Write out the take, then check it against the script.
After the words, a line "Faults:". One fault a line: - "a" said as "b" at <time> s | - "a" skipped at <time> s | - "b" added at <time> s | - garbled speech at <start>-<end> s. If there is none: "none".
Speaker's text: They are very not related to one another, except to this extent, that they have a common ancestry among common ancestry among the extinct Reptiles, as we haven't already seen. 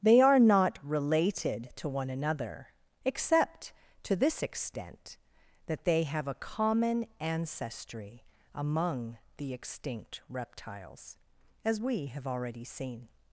They are not related to one another, except to this extent, that they have a common ancestry among the extinct Reptiles, as we have already seen.
Faults:
- "very" skipped at 0.4 s
- "common ancestry among" skipped at 9.2 s
- "haven't" said as "have" at 12.1 s